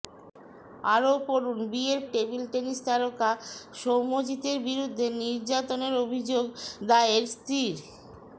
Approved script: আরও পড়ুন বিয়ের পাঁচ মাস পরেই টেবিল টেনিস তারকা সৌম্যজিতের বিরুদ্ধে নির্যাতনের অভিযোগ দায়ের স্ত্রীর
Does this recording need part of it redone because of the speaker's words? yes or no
yes